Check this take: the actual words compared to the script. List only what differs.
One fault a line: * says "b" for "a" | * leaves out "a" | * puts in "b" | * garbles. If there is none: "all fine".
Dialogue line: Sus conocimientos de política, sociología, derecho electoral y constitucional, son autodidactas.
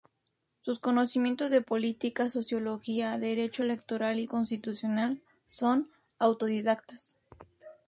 all fine